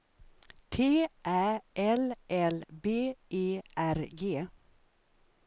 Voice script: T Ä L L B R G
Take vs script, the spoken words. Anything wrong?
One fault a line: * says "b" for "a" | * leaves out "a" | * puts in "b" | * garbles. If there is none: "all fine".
* puts in "E"